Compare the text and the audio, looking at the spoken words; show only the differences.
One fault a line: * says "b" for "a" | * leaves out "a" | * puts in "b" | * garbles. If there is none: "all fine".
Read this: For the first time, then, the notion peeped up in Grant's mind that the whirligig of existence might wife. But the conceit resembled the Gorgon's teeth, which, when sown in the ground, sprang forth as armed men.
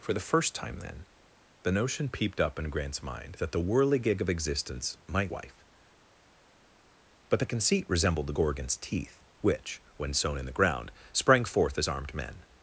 all fine